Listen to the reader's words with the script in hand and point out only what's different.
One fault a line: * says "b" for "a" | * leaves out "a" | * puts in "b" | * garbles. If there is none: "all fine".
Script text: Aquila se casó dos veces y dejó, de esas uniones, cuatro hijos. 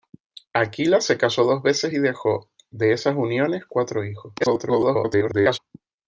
* garbles